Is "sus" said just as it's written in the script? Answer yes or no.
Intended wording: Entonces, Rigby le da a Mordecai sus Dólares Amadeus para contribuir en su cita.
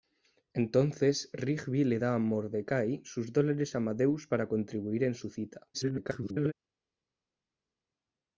yes